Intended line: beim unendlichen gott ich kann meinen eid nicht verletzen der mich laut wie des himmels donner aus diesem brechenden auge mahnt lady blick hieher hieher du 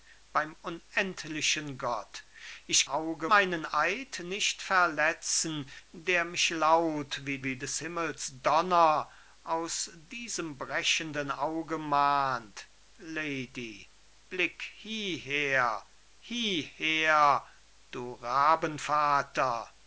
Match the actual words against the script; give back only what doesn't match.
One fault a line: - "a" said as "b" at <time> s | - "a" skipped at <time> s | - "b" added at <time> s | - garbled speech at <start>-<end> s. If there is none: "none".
- "kann" said as "auge" at 2.8 s
- "wie" added at 7.4 s